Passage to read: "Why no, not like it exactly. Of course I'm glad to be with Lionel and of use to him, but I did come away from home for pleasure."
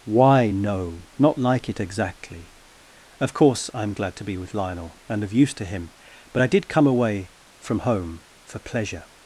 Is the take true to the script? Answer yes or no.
yes